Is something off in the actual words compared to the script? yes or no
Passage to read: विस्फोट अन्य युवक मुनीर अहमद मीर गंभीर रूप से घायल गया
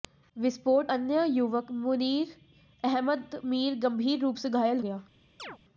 no